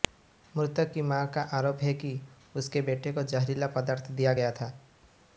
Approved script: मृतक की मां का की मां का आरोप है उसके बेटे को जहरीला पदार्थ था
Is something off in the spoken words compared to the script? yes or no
yes